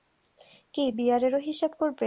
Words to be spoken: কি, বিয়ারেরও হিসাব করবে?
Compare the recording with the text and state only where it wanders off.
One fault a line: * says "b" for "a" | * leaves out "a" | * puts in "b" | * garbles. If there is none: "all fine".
all fine